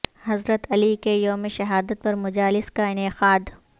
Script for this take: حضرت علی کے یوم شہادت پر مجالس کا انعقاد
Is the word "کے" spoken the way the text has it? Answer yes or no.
yes